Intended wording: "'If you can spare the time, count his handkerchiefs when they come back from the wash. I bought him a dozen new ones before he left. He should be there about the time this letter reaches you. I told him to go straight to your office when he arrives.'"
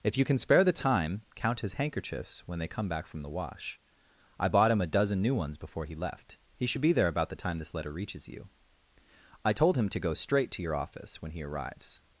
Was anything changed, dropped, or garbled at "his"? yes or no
no